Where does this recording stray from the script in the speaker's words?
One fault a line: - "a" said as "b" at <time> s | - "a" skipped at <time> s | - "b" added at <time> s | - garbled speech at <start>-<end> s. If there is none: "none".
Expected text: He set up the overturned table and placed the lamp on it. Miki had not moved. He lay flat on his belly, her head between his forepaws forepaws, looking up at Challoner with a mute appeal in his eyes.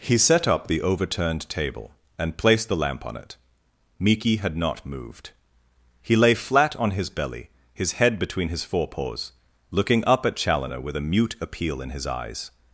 - "her" said as "his" at 7.7 s
- "forepaws" skipped at 9.3 s